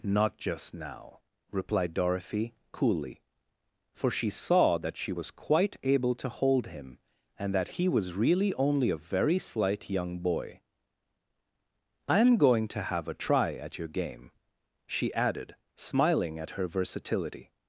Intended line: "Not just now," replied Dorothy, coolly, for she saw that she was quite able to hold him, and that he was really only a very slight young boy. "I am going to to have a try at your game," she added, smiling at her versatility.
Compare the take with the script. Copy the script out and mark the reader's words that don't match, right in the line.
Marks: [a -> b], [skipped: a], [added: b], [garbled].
"Not just now," replied Dorothy, coolly, for she saw that she was quite able to hold him, and that he was really only a very slight young boy. "I am going to [skipped: to] have a try at your game," she added, smiling at her versatility.